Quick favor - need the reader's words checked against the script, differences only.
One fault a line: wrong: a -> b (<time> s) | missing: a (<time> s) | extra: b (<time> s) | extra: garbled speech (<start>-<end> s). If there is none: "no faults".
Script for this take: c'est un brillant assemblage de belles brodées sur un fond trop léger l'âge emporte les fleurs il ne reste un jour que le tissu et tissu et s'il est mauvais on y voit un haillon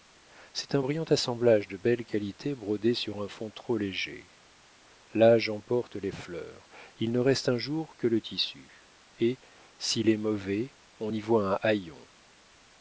extra: qualités (2.1 s)
missing: tissu et (9.4 s)